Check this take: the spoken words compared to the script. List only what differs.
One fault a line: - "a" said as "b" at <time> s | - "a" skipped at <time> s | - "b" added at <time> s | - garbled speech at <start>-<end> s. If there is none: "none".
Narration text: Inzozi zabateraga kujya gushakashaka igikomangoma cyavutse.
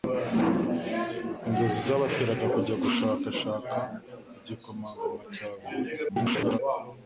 - garbled speech at 6.1-6.6 s